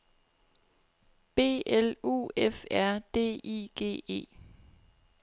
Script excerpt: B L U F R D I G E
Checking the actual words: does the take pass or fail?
pass